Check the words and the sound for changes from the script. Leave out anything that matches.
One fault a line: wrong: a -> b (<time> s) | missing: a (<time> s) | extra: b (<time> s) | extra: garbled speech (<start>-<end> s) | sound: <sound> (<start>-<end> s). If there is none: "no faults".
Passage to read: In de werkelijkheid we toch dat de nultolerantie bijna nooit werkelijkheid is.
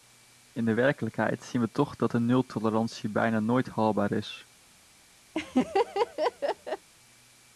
extra: zien (1.4 s)
wrong: werkelijkheid -> haalbaar (3.7 s)
sound: laugh (5.3-6.9 s)